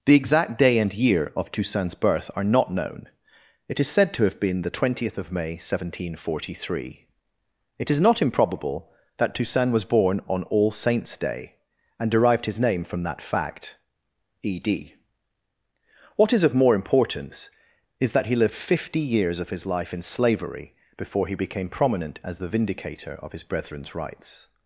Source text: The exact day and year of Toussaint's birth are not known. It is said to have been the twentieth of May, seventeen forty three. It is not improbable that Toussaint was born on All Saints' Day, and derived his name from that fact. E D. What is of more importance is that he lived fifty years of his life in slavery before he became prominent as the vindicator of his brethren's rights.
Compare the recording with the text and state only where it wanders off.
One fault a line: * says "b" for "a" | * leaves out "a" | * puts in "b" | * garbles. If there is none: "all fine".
all fine